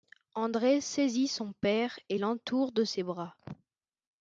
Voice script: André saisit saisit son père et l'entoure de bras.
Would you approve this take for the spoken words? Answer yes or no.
no